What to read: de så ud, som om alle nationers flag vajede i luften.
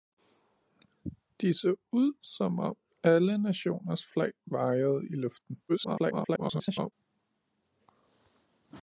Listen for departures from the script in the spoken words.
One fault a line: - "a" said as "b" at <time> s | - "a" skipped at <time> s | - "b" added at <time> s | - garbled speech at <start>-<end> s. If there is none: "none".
- garbled speech at 5.7-6.9 s